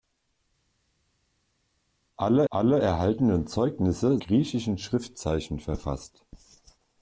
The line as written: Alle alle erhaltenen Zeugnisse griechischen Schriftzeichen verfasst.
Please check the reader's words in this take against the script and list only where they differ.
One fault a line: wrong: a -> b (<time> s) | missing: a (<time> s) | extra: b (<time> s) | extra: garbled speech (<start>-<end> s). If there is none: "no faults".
no faults